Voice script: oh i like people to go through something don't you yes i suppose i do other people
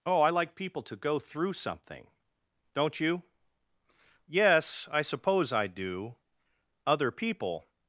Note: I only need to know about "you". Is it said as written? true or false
true